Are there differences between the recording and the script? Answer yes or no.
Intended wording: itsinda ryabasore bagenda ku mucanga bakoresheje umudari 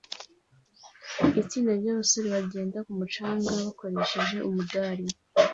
no